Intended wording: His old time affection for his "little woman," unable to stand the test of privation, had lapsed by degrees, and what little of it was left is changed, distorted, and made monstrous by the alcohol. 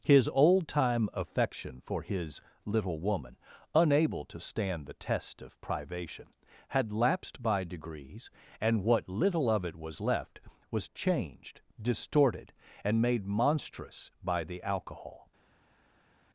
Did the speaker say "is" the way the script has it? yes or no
no